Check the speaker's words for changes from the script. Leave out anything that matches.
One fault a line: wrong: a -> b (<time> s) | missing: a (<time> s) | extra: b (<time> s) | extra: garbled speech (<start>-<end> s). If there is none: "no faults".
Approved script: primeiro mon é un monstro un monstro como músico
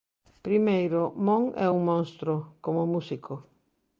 missing: un monstro (2.3 s)